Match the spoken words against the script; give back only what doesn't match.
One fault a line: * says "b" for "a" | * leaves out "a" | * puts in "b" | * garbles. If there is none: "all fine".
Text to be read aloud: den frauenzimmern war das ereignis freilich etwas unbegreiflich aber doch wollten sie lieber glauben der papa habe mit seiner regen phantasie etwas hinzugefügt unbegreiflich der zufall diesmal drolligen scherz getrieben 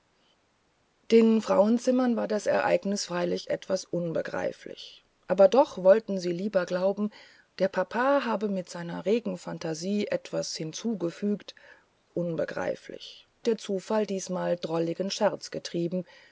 all fine